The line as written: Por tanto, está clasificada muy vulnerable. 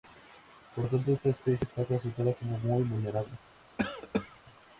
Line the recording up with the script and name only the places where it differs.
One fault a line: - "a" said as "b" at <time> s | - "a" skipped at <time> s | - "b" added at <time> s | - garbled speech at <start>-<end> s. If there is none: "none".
- "esta especie" added at 1.1 s
- "como" added at 2.3 s